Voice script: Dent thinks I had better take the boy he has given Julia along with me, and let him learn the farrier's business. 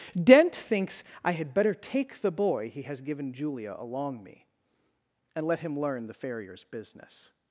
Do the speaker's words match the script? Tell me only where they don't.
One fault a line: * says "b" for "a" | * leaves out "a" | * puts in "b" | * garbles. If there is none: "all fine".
* leaves out "with"